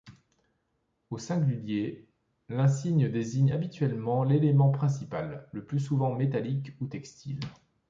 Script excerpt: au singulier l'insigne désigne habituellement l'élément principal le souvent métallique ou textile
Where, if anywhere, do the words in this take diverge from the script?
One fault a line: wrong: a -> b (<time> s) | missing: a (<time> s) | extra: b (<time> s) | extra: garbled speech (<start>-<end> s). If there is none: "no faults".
extra: plus (5.7 s)